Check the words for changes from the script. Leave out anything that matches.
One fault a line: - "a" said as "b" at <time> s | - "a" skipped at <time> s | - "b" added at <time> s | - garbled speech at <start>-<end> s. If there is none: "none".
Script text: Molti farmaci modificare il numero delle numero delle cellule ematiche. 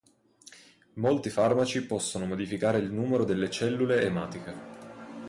- "possono" added at 1.9 s
- "numero delle" skipped at 3.5 s